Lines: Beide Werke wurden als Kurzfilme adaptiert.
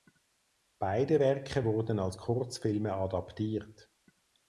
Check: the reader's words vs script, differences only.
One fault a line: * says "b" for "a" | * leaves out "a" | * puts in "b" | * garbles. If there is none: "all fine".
all fine